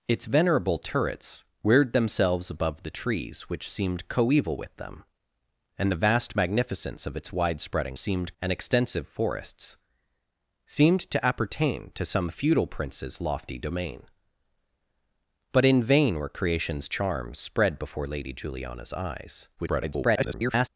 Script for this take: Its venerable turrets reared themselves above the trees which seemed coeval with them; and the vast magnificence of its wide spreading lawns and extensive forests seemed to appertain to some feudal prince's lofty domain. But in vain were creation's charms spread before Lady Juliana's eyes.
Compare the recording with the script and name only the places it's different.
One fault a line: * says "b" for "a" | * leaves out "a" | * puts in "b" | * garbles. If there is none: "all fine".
* says "seemed" for "lawns"
* garbles